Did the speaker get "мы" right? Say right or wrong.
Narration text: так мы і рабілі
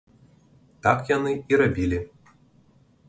wrong